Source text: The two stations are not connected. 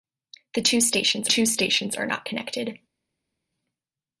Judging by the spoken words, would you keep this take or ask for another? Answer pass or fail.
fail